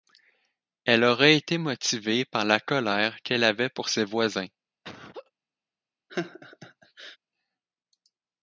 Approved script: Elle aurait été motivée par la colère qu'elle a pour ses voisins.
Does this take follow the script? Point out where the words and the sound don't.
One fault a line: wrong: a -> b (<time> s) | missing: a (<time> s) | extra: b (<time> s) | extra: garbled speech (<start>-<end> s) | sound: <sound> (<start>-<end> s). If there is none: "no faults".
wrong: a -> avait (3.4 s)
sound: laugh (4.8-5.3 s)
sound: laugh (6.1-7.2 s)